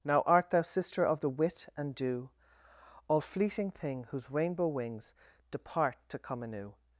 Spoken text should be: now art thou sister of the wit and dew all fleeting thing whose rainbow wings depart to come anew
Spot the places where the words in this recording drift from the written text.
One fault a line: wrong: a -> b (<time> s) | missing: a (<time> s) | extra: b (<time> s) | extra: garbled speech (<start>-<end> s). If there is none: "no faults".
no faults